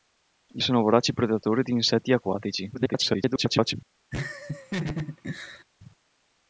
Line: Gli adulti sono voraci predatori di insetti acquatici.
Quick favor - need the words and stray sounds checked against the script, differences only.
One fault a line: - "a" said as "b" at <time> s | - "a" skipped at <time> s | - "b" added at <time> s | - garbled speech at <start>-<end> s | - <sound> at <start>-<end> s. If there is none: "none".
- "adulti" skipped at 0.6 s
- garbled speech at 2.7-3.7 s
- laugh at 4.1-5.6 s